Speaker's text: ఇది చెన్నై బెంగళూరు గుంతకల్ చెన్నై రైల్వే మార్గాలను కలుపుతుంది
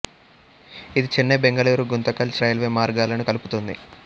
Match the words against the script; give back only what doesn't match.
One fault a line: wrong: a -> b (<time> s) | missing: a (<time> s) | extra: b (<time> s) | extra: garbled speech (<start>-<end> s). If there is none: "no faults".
missing: చెన్నై (2.4 s)